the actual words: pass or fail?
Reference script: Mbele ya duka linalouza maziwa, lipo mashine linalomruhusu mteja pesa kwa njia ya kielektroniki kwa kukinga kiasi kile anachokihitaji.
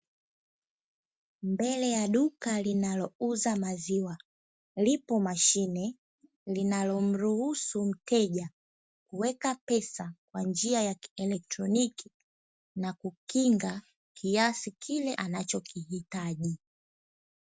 fail